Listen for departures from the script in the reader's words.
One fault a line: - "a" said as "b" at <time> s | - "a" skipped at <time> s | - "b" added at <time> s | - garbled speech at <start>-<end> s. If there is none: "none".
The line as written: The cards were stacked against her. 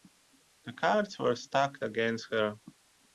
none